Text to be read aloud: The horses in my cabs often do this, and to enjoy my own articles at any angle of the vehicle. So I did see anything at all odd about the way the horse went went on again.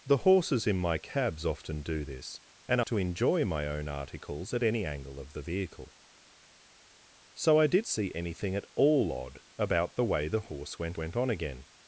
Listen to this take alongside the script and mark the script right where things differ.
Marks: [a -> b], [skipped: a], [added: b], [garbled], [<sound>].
The horses in my cabs often do this, and to enjoy my own articles at any angle of the vehicle. So I did see anything at all odd about the way the horse went went on again.